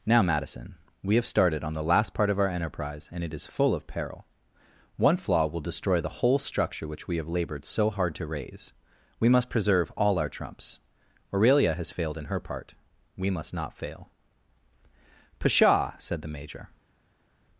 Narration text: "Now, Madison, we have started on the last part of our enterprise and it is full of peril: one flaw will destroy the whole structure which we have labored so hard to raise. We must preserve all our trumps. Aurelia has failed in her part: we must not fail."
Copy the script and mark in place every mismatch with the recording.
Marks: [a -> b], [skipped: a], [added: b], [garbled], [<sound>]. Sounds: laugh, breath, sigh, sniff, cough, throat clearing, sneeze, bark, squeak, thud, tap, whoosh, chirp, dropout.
"Now, Madison, we have started on the last part of our enterprise and it is full of peril: one flaw will destroy the whole structure which we have labored so hard to raise. We must preserve all our trumps. Aurelia has failed in her part: we must not fail." [added: Pshaw said the Major]